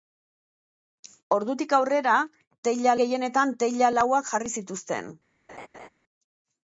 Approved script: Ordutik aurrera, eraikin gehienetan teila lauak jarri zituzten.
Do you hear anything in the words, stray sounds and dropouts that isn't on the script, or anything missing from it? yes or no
yes